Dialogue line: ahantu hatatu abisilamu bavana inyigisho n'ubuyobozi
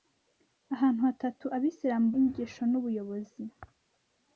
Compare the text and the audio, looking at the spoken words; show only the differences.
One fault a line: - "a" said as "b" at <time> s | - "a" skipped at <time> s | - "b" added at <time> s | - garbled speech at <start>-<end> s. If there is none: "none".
- "bavana" skipped at 2.1 s